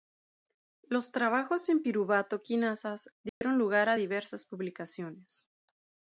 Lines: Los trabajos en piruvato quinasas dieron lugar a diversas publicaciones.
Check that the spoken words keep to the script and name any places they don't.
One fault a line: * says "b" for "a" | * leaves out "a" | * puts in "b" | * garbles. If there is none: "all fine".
all fine